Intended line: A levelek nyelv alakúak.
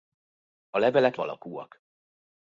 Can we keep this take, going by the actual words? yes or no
no